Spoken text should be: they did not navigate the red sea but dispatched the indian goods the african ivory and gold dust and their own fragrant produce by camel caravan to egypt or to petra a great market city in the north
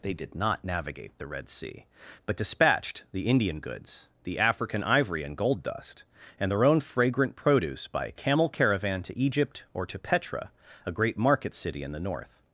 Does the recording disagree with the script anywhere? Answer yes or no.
no